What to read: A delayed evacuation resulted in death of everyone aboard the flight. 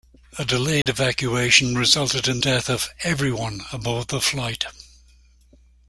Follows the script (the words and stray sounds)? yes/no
no